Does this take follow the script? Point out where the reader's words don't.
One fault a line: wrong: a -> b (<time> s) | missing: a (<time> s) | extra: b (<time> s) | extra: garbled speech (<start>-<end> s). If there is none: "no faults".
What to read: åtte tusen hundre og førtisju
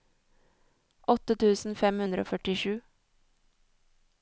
extra: fem (1.8 s)